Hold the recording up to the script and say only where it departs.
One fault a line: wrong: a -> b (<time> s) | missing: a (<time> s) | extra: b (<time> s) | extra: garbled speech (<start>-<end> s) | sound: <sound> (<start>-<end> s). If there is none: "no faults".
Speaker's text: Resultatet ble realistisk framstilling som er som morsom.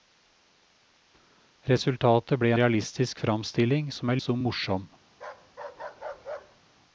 sound: bark (5.1-6.6 s)